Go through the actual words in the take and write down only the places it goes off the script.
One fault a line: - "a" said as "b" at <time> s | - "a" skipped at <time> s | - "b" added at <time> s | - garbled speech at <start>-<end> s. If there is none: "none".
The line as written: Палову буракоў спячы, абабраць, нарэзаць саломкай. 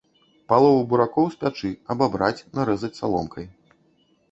none